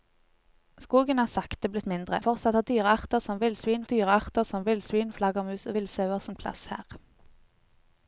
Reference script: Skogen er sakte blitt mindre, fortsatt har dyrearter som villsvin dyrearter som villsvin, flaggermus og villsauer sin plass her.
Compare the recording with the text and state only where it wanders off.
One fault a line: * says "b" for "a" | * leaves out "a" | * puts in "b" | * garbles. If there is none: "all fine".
all fine